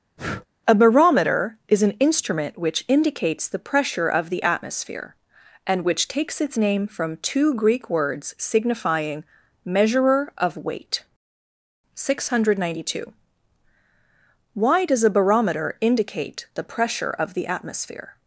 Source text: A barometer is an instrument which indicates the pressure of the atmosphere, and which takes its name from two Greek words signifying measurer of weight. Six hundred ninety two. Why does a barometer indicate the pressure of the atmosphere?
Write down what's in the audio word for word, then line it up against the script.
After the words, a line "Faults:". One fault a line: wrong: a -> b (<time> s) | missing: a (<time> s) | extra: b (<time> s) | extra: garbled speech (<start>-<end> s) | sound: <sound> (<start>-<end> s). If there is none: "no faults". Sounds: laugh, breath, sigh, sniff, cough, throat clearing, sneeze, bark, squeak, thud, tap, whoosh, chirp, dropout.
A barometer is an instrument which indicates the pressure of the atmosphere, and which takes its name from two Greek words signifying measurer of weight. Six hundred ninety two. Why does a barometer indicate the pressure of the atmosphere?
Faults:
sound: breath (0.2-0.5 s)